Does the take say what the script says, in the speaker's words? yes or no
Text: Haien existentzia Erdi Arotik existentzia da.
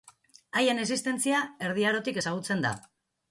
no